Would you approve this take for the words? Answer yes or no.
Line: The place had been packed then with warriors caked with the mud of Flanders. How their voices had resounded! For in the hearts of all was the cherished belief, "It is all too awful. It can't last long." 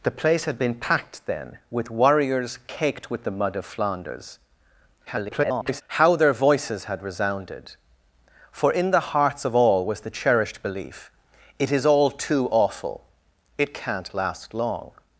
no